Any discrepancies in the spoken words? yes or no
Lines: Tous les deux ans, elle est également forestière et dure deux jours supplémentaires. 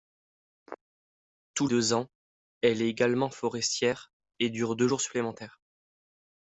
yes